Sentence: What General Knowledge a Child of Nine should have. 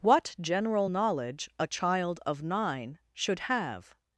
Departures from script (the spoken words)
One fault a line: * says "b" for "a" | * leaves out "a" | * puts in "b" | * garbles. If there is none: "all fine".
all fine